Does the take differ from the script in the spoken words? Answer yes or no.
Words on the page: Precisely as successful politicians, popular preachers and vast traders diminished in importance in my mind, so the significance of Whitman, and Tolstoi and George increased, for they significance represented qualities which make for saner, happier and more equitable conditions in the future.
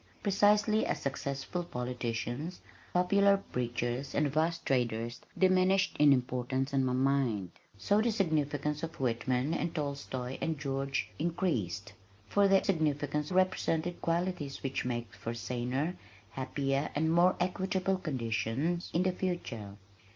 no